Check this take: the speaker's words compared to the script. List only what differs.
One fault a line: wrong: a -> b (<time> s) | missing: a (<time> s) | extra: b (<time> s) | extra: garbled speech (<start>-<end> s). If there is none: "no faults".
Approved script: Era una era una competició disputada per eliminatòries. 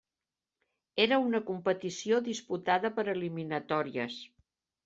missing: era una (1.4 s)